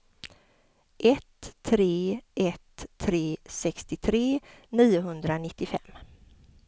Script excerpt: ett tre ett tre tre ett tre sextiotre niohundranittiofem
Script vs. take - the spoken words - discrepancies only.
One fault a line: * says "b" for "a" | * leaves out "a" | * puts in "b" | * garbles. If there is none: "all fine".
* leaves out "tre ett tre"